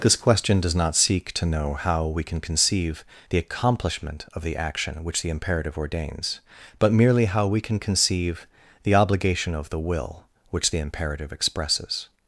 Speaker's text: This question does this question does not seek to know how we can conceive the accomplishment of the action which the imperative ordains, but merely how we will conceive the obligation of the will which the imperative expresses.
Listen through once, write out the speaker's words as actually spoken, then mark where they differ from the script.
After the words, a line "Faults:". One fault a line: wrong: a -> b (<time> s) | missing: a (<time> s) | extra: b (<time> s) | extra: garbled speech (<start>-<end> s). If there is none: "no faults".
This question does not seek to know how we can conceive the accomplishment of the action which the imperative ordains, but merely how we can conceive the obligation of the will which the imperative expresses.
Faults:
missing: this question does (0.7 s)
wrong: will -> can (7.6 s)